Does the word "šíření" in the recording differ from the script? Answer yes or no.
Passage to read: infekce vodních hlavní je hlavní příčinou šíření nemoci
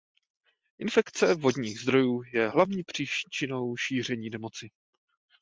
no